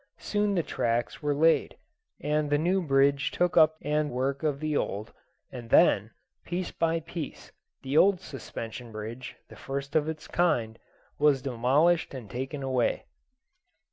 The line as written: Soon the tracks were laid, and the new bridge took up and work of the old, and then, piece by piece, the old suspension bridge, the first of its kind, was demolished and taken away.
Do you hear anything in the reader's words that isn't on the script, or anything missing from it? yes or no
no